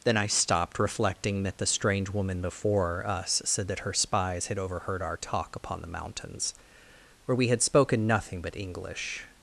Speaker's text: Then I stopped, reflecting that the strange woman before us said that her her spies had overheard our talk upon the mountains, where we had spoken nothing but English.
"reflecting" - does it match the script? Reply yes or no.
yes